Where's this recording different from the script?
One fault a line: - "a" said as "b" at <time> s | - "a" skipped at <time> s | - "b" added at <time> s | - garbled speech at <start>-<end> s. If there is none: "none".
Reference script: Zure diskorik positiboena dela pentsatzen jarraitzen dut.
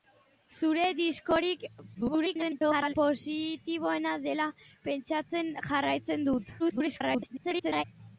- garbled speech at 1.9-2.9 s
- garbled speech at 6.6-7.8 s